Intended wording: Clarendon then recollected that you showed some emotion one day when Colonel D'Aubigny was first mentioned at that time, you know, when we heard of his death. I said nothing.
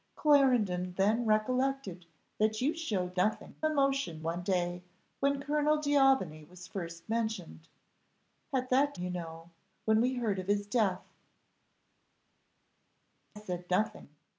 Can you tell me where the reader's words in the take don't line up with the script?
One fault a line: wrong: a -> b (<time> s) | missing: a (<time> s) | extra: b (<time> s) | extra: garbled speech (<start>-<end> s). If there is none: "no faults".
wrong: some -> nothing (3.2 s)
missing: time (8.9 s)
missing: I (11.1 s)